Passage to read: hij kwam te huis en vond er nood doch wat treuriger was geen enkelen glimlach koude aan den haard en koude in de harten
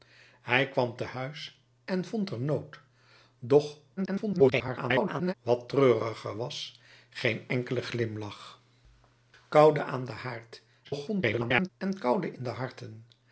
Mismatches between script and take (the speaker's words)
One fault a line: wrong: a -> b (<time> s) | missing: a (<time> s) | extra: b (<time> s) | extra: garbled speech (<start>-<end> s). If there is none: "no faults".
extra: garbled speech (4.0-5.3 s)
extra: garbled speech (10.8-11.7 s)